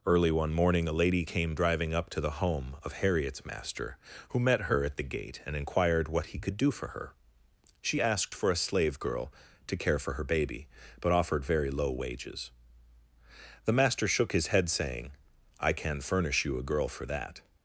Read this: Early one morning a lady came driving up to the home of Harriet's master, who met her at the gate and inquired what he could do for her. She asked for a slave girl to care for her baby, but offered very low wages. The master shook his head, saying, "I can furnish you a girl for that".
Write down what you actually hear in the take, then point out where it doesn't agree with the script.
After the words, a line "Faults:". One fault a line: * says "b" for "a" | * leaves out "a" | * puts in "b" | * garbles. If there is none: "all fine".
Early one morning a lady came driving up to the home of Harriet's master, who met her at the gate and inquired what he could do for her. She asked for a slave girl to care for her baby, but offered very low wages. The master shook his head, saying, "I can furnish you a girl for that".
Faults:
all fine